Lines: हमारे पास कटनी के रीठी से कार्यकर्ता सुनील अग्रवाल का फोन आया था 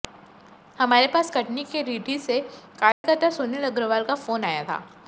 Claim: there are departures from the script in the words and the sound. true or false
true